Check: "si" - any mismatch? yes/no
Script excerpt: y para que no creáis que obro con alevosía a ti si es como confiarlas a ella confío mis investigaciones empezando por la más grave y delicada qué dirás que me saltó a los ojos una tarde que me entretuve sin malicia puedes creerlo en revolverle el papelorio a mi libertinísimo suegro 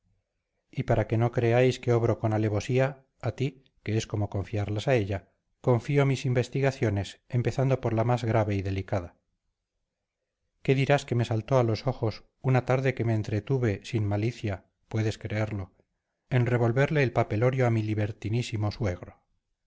yes